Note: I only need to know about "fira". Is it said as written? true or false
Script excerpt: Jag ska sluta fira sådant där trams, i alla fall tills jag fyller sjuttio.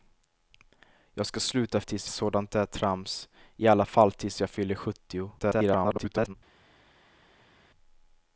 false